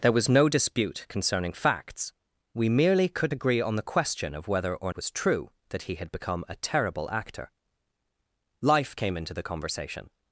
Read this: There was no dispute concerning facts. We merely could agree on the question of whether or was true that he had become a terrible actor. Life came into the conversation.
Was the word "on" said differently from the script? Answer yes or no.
no